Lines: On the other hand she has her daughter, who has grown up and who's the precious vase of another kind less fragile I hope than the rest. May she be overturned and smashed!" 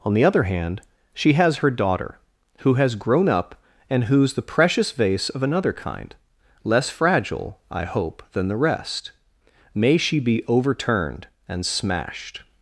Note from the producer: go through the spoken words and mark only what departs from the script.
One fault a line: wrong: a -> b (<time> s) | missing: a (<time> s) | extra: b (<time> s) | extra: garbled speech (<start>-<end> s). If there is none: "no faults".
no faults